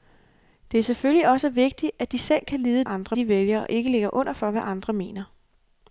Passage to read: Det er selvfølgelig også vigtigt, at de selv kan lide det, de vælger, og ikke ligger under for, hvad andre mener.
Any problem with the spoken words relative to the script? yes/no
yes